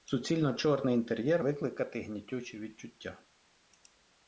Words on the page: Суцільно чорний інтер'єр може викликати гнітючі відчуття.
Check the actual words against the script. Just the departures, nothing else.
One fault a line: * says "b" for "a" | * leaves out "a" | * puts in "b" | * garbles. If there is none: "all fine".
* leaves out "може"